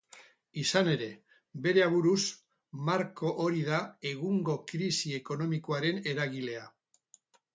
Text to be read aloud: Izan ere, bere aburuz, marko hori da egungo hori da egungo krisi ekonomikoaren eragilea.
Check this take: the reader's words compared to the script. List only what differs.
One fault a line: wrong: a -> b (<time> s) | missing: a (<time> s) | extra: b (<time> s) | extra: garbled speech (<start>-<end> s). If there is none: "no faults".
missing: hori da egungo (4.6 s)